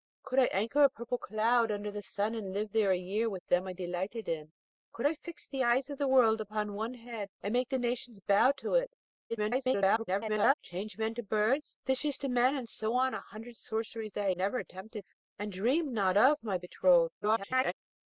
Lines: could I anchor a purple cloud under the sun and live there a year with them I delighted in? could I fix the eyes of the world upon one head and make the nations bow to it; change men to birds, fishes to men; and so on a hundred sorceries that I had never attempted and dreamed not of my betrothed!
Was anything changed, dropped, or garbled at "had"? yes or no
yes